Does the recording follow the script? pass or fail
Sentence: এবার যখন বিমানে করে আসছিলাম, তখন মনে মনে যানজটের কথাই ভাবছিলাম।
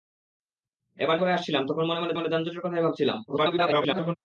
fail